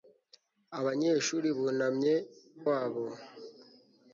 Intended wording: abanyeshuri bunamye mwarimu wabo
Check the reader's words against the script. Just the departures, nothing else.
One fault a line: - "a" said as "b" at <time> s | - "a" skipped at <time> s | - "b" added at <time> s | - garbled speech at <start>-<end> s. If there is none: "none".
- "mwarimu" skipped at 2.2 s